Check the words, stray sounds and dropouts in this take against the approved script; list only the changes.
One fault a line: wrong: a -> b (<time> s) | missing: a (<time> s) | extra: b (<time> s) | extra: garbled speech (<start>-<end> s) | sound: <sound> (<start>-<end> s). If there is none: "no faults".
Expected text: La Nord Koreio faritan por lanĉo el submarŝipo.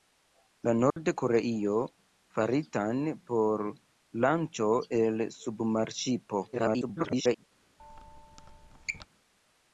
sound: dropout (0.9-1.0 s)
extra: garbled speech (6.5-7.4 s)
sound: squeak (7.8-9.1 s)